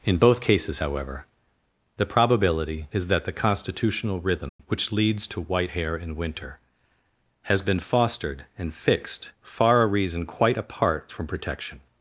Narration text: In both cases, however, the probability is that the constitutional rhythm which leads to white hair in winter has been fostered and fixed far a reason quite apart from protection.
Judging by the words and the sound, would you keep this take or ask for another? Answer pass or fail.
fail